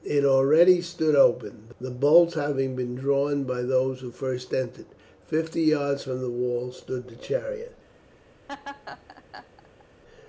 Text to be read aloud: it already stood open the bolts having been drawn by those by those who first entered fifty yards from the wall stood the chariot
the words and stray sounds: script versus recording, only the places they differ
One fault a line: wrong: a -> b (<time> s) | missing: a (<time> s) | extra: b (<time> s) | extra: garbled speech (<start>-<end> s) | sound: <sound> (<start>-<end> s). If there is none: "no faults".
missing: by those (4.0 s)
sound: laugh (8.5-9.8 s)